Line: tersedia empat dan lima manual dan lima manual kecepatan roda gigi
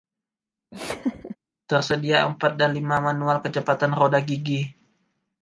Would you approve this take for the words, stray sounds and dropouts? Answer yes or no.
no